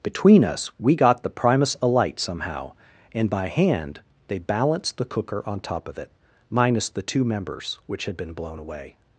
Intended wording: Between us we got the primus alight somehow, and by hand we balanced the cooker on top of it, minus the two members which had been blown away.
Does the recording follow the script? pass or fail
fail